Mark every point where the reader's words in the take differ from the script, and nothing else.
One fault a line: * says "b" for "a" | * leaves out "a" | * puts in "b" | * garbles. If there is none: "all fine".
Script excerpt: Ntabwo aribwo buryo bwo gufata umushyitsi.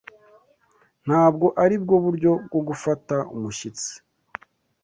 all fine